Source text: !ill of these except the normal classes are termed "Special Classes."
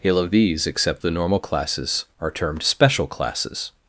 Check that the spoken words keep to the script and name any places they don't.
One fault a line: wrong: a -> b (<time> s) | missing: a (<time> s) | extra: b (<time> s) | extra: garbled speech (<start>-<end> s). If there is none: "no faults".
no faults